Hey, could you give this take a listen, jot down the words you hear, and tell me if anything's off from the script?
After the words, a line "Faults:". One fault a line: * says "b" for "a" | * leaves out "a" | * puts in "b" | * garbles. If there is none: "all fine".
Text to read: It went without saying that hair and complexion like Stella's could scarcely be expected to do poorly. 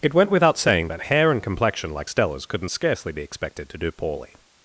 It went without saying that hair and complexion like Stella's couldn't scarcely be expected to do poorly.
Faults:
* says "couldn't" for "could"